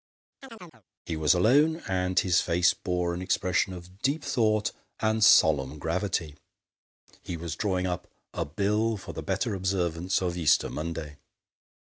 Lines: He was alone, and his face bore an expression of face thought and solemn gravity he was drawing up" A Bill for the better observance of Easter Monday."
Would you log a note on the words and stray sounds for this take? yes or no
yes